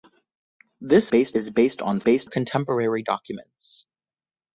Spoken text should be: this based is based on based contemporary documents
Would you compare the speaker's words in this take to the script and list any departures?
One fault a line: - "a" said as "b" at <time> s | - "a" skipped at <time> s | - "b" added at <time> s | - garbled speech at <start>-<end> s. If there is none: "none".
none